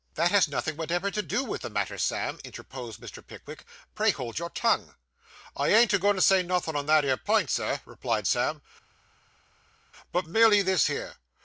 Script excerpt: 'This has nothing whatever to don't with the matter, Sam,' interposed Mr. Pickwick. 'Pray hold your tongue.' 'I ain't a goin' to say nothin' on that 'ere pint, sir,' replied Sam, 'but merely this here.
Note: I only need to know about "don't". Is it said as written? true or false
false